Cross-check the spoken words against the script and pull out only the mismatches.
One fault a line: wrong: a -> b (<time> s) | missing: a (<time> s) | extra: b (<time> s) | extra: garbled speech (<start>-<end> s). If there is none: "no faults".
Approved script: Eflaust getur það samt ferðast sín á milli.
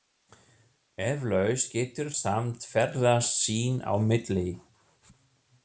missing: það (2.1 s)